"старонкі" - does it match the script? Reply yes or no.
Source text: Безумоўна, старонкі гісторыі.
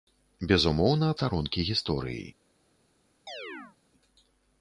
yes